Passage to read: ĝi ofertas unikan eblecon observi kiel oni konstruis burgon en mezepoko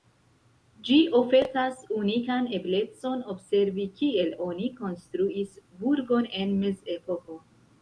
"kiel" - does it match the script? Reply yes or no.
yes